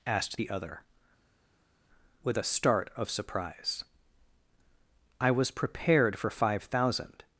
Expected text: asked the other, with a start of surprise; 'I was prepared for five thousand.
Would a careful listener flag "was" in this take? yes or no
no